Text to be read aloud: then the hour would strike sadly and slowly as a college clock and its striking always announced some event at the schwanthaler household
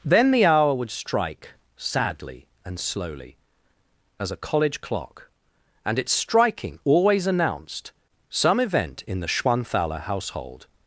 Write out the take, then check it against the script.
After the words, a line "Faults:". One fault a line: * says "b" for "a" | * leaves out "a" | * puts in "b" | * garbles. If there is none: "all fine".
then the hour would strike sadly and slowly as a college clock and its striking always announced some event in the schwanthaler household
Faults:
* says "in" for "at"